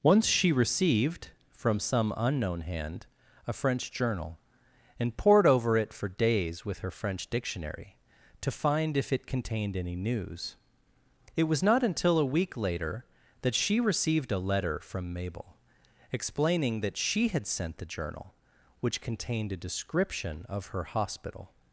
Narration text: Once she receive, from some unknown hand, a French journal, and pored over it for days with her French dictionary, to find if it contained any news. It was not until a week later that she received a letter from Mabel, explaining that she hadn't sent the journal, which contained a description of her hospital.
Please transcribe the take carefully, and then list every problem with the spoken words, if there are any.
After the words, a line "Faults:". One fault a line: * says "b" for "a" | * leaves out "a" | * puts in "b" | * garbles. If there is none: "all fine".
Once she received, from some unknown hand, a French journal, and pored over it for days with her French dictionary, to find if it contained any news. It was not until a week later that she received a letter from Mabel, explaining that she had sent the journal, which contained a description of her hospital.
Faults:
* says "received" for "receive"
* says "had" for "hadn't"